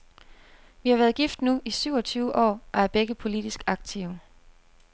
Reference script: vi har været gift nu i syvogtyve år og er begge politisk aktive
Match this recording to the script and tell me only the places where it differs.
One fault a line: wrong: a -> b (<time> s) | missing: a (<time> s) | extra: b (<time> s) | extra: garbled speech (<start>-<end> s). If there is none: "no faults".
no faults